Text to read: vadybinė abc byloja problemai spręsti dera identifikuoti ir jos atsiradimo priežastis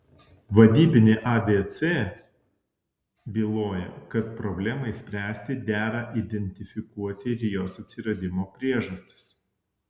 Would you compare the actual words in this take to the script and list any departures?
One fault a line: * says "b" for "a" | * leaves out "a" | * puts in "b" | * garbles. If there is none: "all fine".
* puts in "kad"